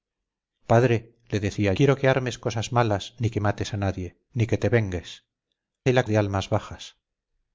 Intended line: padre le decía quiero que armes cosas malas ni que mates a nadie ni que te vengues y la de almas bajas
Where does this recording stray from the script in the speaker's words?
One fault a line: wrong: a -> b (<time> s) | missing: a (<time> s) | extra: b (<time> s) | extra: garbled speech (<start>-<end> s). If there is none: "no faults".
no faults